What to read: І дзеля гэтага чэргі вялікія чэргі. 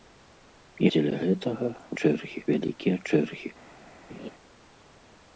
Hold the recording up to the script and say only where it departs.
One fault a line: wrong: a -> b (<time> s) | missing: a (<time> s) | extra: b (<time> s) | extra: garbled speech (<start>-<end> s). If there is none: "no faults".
no faults